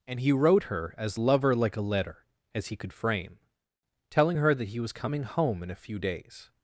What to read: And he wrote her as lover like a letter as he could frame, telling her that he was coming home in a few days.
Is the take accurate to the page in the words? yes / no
yes